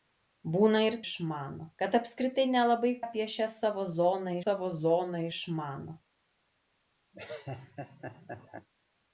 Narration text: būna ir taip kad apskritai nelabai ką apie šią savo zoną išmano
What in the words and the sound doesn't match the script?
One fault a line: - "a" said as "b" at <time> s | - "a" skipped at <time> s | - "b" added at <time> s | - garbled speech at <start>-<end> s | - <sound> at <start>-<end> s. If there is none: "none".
- "taip" said as "išmano" at 1.0 s
- "ką" skipped at 2.9 s
- "savo zoną" added at 4.4 s
- laugh at 7.1-8.7 s